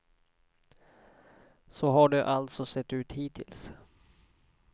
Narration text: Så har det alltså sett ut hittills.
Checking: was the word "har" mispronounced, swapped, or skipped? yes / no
no